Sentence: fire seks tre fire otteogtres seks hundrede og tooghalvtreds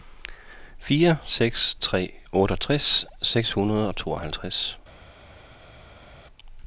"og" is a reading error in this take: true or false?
false